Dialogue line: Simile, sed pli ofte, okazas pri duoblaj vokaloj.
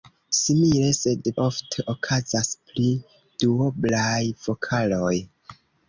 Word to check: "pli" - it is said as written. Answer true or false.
false